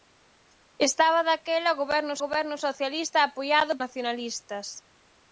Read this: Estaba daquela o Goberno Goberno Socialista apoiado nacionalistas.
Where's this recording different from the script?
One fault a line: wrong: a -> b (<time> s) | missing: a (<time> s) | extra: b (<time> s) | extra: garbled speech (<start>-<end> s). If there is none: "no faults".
no faults